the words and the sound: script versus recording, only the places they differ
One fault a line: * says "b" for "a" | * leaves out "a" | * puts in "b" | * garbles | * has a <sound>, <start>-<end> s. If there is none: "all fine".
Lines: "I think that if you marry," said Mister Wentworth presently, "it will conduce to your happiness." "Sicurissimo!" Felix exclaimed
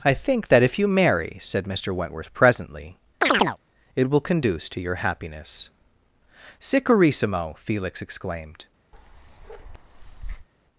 * has a chirp, 3.2-3.6 s
* has a bark, 8.9-10.5 s